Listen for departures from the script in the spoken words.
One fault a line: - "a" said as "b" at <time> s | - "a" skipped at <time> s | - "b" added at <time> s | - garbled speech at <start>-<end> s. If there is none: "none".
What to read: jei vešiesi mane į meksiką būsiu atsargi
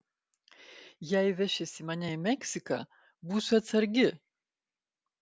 none